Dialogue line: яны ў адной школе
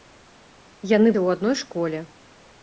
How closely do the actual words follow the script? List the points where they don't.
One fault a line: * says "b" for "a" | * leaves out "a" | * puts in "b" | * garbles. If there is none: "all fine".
all fine